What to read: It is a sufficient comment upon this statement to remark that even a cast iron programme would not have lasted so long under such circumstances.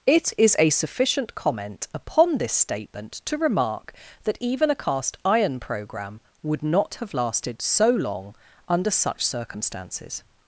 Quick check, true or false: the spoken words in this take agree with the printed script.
true